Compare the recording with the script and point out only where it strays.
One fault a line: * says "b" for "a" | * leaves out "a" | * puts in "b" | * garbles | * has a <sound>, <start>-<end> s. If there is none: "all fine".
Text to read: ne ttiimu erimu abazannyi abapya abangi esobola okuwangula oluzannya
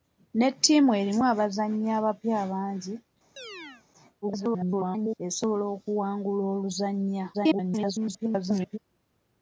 * has a chirp, 3.4-3.8 s
* garbles
* garbles